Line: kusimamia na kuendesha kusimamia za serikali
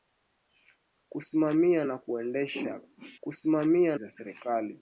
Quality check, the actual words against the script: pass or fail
pass